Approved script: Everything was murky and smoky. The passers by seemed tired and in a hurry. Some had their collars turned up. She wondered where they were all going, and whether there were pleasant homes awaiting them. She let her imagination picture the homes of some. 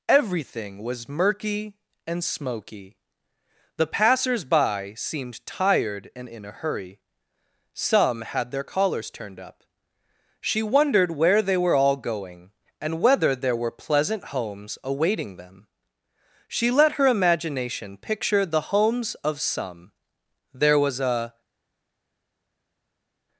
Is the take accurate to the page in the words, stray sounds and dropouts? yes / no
no